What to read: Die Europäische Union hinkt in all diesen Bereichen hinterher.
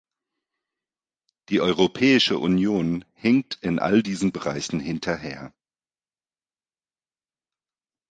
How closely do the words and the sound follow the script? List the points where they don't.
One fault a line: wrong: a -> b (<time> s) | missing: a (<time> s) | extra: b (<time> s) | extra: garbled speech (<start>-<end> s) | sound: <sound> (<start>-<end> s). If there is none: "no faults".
no faults